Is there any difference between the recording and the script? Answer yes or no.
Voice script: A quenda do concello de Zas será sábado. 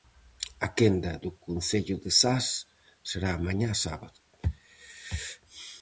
yes